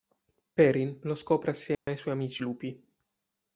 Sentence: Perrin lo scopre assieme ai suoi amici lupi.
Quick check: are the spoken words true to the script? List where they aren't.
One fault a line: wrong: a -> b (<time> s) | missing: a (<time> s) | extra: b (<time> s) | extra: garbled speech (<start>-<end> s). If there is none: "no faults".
no faults